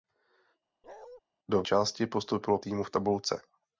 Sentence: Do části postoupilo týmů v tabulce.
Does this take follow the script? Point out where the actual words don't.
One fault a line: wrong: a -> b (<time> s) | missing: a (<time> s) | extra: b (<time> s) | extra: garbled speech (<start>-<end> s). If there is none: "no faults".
no faults